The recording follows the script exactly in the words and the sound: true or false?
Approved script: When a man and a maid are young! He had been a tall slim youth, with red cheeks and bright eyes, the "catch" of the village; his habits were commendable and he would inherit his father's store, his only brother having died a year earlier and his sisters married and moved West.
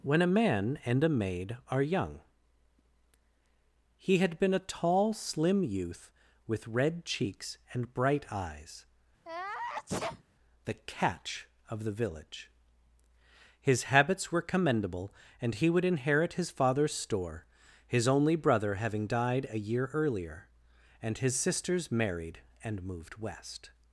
false